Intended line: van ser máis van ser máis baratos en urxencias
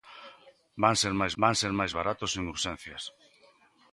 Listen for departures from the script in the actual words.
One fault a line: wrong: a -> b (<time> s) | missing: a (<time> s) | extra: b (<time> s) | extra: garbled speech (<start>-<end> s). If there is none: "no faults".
no faults